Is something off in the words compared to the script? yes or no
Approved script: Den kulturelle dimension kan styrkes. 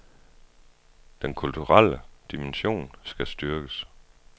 yes